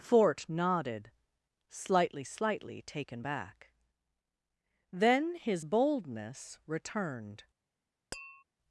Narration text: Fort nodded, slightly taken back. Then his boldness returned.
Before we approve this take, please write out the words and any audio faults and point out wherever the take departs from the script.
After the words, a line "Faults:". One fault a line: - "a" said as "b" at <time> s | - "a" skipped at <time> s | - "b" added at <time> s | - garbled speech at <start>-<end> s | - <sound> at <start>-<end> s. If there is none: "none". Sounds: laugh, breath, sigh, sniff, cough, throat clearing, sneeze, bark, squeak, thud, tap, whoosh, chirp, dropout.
Fort nodded, slightly slightly taken back. Then his boldness returned.
Faults:
- "slightly" added at 2.2 s
- tap at 8.1-8.4 s